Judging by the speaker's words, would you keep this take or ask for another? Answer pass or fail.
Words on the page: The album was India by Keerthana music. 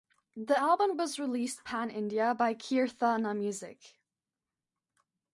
fail